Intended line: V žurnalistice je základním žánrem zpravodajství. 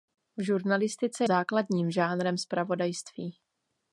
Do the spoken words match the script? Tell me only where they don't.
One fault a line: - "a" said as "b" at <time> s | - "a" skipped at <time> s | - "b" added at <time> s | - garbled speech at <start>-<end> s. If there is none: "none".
- "je" skipped at 1.3 s